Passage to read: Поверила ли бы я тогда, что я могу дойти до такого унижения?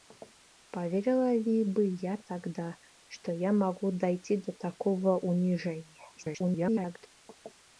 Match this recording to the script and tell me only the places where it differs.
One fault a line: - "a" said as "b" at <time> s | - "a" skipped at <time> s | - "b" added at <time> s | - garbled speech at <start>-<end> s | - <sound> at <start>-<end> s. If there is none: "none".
- garbled speech at 6.2-7.1 s